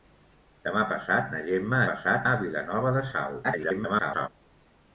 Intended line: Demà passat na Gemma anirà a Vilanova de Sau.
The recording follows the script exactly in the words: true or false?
false